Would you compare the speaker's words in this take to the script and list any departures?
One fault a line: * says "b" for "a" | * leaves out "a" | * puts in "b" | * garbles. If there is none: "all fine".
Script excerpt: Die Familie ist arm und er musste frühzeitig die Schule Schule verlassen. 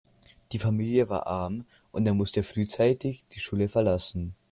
* says "war" for "ist"
* leaves out "Schule"